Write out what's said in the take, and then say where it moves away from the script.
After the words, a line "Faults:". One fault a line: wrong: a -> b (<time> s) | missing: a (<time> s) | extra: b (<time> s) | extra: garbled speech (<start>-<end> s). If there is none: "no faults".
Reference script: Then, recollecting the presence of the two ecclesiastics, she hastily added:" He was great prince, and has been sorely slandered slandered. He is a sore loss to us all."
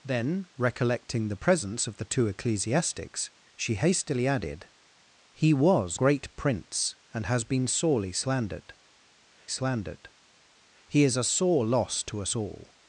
Then, recollecting the presence of the two ecclesiastics, she hastily added:" He was great prince, and has been sorely slandered slandered. He is a sore loss to us all."
Faults:
no faults